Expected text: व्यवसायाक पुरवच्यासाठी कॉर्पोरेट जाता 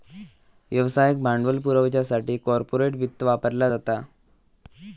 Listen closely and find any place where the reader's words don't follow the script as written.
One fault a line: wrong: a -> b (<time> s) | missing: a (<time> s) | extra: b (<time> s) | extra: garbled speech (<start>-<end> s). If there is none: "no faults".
extra: भांडवल (1.2 s)
extra: वित्त वापरला (3.0 s)